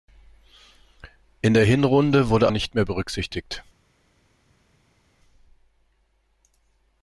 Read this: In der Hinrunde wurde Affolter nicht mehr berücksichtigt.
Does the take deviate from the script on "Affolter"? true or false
true